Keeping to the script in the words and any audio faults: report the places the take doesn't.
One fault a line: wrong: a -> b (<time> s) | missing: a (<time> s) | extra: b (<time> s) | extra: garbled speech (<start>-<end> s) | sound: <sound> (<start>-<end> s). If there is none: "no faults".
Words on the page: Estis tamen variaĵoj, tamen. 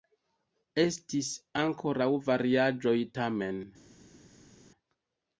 wrong: tamen -> ankoraŭ (1.6 s)